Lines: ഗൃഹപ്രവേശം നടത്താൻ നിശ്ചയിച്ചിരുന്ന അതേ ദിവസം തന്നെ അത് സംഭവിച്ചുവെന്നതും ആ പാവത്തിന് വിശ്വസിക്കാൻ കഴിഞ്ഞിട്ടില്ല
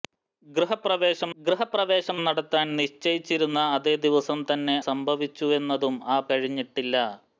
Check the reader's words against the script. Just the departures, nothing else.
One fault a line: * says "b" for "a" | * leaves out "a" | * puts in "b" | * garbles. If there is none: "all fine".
* puts in "ഗൃഹപ്രവേശം"
* leaves out "അത്"
* leaves out "പാവത്തിന് വിശ്വസിക്കാൻ"